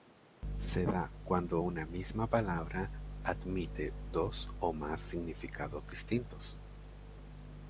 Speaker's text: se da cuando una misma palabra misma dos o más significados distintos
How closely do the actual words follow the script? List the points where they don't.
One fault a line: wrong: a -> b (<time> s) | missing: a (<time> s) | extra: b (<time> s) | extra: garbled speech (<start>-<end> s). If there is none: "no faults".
wrong: misma -> admite (3.2 s)